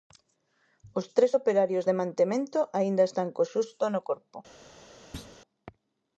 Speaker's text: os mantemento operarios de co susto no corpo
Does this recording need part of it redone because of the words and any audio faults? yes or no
yes